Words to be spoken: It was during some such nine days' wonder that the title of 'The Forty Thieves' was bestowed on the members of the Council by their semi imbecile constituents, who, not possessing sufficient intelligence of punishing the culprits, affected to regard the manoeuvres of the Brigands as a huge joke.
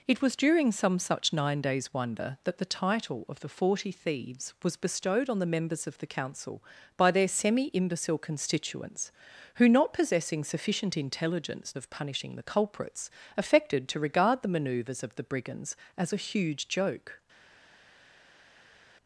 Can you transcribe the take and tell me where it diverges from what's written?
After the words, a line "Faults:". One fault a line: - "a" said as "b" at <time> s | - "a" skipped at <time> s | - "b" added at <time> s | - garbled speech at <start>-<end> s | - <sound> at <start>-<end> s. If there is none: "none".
It was during some such nine days' wonder that the title of 'The Forty Thieves' was bestowed on the members of the Council by their semi imbecile constituents, who, not possessing sufficient intelligence of punishing the culprits, affected to regard the manoeuvres of the Brigands as a huge joke.
Faults:
none